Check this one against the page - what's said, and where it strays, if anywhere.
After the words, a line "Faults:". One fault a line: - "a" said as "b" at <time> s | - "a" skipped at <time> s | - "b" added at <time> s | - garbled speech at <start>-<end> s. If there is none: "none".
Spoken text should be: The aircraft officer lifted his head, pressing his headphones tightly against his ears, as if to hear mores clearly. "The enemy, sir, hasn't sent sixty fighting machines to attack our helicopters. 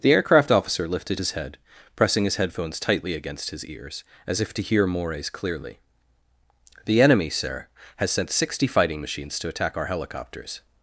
The aircraft officer lifted his head, pressing his headphones tightly against his ears, as if to hear mores clearly. "The enemy, sir, has sent sixty fighting machines to attack our helicopters.
Faults:
- "hasn't" said as "has" at 8.0 s